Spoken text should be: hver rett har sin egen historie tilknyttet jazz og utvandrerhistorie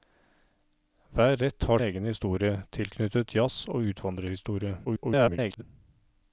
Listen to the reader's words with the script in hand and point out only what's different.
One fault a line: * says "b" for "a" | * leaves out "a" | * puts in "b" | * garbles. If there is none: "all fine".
* leaves out "sin"
* garbles